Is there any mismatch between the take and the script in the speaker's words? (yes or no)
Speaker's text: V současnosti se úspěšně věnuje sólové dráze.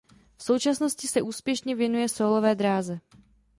no